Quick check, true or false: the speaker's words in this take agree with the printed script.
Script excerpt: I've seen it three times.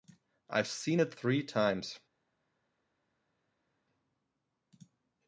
true